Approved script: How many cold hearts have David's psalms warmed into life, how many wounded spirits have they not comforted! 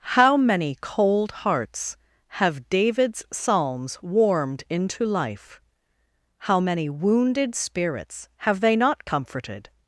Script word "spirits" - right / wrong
right